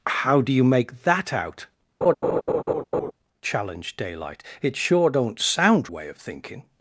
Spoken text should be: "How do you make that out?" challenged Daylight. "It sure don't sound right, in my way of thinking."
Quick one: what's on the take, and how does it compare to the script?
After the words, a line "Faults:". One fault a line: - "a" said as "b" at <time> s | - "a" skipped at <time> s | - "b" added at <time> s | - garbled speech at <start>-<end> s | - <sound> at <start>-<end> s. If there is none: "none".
"How do you make that out?" challenged Daylight. "It sure don't sound way of thinking."
Faults:
- laugh at 2.0-3.1 s
- "right in my" skipped at 5.9 s